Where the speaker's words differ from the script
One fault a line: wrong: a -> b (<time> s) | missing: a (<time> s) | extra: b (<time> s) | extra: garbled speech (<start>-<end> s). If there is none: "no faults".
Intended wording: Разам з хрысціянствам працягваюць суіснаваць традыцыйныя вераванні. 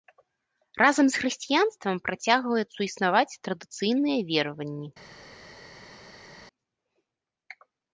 no faults